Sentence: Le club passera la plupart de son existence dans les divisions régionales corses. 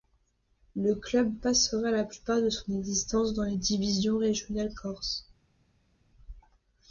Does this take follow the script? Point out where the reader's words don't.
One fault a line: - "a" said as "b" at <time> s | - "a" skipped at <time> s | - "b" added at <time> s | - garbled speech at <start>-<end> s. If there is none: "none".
none